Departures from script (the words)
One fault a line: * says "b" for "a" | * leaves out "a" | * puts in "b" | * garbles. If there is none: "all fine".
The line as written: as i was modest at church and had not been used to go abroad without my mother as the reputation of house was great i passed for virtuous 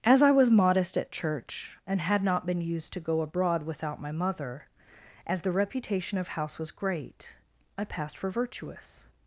all fine